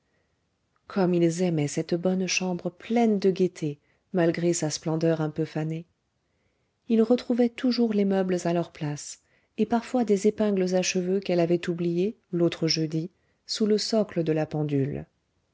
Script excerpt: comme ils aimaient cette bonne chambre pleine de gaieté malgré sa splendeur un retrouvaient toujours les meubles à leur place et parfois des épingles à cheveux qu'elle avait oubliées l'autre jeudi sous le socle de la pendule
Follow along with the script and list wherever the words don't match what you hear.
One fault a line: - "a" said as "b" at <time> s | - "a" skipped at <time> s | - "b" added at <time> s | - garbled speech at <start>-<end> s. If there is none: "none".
- "peu fanée ils" added at 5.3 s